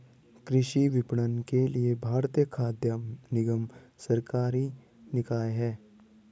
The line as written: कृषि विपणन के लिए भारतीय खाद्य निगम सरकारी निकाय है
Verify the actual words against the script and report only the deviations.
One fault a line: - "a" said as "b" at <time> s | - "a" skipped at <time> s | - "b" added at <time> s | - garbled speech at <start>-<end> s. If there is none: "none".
none